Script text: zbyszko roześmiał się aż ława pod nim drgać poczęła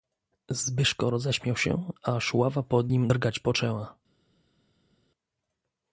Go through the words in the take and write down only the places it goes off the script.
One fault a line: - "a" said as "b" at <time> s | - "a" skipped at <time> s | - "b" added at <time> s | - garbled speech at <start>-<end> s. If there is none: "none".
none